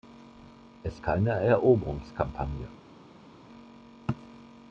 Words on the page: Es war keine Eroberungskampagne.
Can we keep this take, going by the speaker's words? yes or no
no